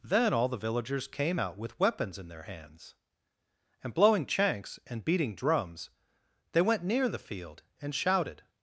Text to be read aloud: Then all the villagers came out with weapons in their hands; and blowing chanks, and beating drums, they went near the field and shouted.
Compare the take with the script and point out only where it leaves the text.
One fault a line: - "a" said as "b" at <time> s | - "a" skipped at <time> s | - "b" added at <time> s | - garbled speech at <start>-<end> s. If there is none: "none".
none